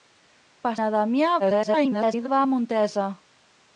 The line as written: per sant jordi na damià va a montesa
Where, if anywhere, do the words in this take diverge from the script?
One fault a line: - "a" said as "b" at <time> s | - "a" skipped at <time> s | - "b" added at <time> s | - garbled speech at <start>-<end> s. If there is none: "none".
- "sant jordi" skipped at 0.7 s
- garbled speech at 1.4-2.3 s